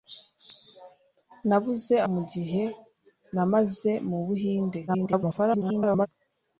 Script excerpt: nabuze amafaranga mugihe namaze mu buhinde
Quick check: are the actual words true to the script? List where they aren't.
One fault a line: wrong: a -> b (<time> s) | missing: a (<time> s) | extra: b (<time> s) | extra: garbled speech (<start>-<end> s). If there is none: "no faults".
missing: amafaranga (1.9 s)
extra: garbled speech (4.9-6.1 s)